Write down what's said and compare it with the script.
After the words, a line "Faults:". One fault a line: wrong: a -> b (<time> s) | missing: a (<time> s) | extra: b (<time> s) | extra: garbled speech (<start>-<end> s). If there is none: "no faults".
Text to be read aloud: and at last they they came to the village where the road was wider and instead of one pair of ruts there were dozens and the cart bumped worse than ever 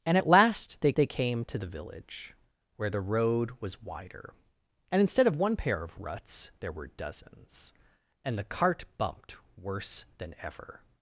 and at last they they came to the village where the road was wider and instead of one pair of ruts there were dozens and the cart bumped worse than ever
Faults:
no faults